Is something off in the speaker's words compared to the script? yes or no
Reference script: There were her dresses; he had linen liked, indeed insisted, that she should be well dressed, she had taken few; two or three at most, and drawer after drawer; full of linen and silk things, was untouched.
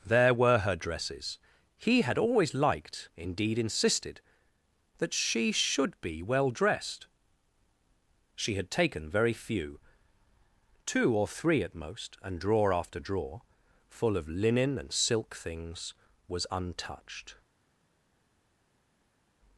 yes